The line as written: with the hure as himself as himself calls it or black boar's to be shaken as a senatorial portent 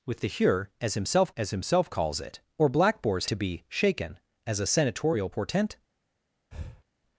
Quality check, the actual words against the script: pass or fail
pass